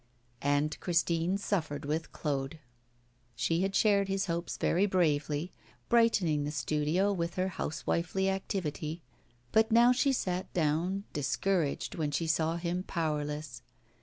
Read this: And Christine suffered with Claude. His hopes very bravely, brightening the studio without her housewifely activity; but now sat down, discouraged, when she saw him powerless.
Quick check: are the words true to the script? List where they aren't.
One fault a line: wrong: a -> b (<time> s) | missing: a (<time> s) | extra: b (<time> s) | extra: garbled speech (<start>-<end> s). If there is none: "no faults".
extra: She had shared (3.4 s)
wrong: without -> with (7.1 s)
extra: she (9.9 s)